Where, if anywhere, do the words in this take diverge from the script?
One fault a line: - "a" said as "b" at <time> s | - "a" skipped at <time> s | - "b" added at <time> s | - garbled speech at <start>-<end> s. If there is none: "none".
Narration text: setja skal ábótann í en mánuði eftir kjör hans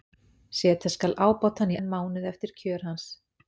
none